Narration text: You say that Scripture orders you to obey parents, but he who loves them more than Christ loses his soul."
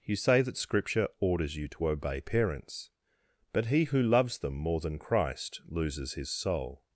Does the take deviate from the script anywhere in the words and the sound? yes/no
no